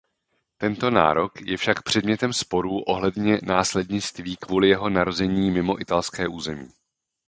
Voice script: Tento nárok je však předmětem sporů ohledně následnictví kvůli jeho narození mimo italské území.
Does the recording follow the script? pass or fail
pass